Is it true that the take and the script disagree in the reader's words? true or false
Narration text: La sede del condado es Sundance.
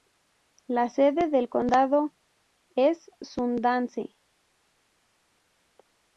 false